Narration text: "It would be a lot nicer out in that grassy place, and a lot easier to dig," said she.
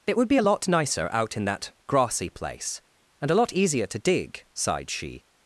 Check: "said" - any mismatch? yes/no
yes